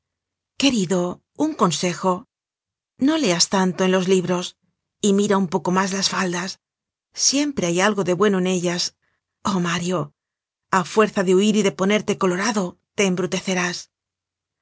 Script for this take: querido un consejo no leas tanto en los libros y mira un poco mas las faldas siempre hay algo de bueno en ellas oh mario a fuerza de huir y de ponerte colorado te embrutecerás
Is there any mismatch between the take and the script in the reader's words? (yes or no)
no